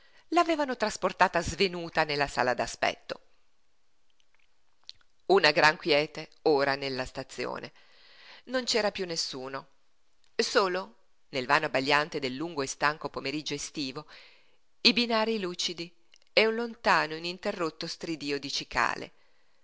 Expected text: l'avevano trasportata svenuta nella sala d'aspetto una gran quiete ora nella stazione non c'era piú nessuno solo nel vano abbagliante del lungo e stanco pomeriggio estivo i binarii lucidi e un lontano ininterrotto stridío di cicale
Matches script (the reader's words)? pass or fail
pass